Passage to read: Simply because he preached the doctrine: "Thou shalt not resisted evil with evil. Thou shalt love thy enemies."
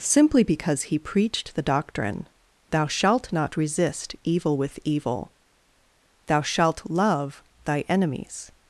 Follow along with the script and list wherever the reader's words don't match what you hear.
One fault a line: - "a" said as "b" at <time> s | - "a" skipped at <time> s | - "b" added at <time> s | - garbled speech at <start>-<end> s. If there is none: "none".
- "resisted" said as "resist" at 3.6 s